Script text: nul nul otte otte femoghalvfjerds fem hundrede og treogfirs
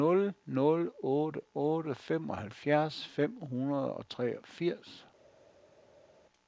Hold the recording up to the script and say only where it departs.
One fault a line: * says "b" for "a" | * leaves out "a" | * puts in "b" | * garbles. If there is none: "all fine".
all fine